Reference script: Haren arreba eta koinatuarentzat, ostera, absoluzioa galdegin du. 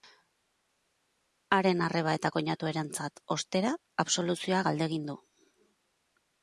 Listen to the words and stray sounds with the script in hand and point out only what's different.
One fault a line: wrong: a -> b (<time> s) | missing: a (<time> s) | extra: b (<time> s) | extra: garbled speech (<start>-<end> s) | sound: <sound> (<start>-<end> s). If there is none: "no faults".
no faults